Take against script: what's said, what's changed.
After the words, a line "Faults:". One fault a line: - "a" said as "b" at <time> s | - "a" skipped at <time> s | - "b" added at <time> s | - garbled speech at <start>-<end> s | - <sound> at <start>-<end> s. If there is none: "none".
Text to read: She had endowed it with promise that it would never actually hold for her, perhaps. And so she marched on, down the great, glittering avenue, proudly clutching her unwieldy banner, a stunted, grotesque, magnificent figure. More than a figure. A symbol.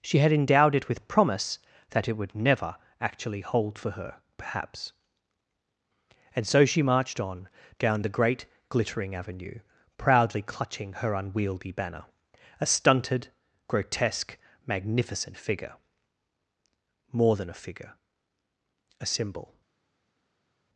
She had endowed it with promise that it would never actually hold for her, perhaps. And so she marched on, down the great, glittering avenue, proudly clutching her unwieldy banner, a stunted, grotesque, magnificent figure. More than a figure. A symbol.
Faults:
none